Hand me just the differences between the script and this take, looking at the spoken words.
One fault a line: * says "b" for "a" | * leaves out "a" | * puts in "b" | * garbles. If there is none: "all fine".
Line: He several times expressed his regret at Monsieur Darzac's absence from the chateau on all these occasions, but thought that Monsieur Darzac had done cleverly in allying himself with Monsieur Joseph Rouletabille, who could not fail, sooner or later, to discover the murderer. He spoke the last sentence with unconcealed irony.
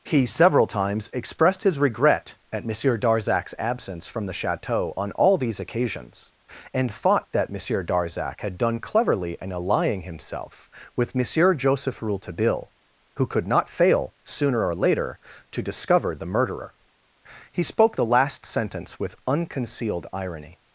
* says "and" for "but"